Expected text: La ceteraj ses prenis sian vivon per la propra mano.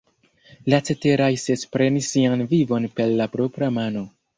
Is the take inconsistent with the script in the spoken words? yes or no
no